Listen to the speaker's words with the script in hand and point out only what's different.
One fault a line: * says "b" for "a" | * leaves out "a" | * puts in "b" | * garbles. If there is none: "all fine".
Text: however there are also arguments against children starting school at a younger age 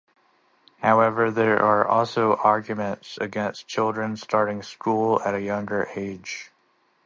all fine